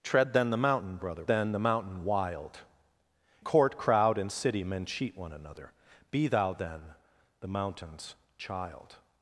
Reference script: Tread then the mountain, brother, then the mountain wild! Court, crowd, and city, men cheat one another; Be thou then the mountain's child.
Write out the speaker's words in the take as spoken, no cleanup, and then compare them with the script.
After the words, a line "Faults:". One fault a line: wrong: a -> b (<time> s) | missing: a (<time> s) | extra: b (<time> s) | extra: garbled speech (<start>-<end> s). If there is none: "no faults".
Tread then the mountain, brother, then the mountain wild! Court, crowd, and city, men cheat one another; Be thou then the mountain's child.
Faults:
no faults